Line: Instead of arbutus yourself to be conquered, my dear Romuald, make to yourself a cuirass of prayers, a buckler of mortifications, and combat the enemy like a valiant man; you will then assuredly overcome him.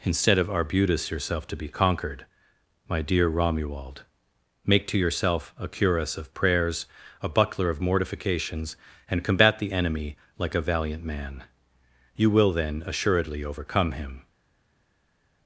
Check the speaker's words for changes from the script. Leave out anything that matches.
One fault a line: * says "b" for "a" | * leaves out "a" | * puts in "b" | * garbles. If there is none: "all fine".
all fine